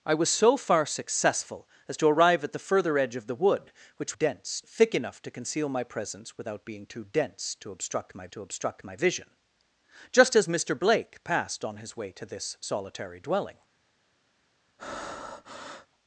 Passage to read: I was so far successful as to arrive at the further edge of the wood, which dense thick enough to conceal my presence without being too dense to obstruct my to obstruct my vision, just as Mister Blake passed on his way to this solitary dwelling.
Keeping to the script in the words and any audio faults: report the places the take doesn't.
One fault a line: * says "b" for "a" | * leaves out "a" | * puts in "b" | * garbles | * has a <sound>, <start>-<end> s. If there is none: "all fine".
* has a breath, 14.8-15.9 s